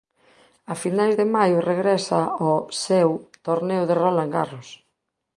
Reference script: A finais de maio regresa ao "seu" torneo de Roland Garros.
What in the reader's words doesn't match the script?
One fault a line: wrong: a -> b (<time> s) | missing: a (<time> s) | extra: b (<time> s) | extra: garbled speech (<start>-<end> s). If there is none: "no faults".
no faults